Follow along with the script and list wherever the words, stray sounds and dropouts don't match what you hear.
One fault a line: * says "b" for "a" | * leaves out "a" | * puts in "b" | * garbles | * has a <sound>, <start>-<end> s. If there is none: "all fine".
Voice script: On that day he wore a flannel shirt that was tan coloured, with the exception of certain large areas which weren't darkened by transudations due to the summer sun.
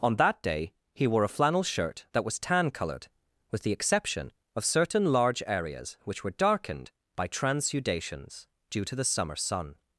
* says "were" for "weren't"